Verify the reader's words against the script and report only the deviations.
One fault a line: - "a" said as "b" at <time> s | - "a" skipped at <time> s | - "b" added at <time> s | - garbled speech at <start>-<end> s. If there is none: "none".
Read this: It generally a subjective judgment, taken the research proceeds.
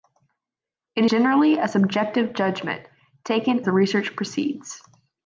none